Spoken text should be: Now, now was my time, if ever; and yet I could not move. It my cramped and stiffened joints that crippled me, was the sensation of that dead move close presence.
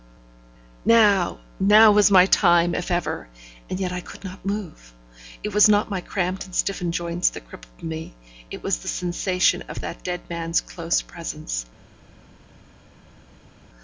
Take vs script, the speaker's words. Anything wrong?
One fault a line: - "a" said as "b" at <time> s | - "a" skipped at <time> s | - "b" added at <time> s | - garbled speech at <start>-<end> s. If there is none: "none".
- "was not" added at 5.5 s
- "it" added at 8.5 s
- "move" said as "man's" at 10.3 s